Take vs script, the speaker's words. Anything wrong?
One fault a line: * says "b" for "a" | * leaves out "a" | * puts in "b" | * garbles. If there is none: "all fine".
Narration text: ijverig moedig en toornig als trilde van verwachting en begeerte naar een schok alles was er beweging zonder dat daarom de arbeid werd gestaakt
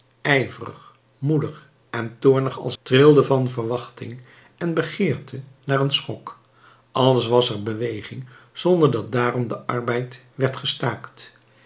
all fine